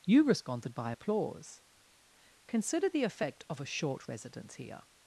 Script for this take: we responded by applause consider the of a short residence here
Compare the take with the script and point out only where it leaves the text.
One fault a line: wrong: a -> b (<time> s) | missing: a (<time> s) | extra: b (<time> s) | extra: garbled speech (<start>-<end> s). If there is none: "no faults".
wrong: we -> you (0.1 s)
extra: effect (3.0 s)